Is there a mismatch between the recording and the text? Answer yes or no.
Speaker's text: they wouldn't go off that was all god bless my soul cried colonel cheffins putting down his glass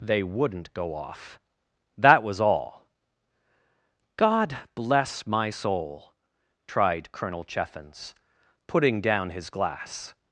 yes